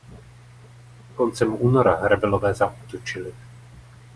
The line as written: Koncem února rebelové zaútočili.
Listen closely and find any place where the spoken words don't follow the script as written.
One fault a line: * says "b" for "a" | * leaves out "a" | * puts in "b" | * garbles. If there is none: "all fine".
all fine